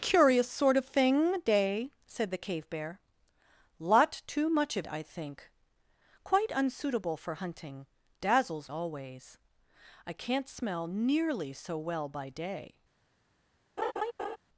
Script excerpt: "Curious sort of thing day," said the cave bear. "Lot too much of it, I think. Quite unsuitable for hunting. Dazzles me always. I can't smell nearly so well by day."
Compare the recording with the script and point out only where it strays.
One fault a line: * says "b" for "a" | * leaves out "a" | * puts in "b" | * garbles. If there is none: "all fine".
* leaves out "it"
* leaves out "me"